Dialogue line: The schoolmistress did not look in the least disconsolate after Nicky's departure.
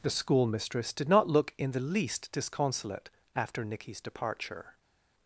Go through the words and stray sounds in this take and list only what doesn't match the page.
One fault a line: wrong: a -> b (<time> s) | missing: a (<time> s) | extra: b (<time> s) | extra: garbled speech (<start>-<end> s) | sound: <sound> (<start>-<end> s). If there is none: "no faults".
no faults